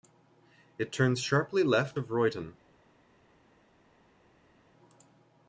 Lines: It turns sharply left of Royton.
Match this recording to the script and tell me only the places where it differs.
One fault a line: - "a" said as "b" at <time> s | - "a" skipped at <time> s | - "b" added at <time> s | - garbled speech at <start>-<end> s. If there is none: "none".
none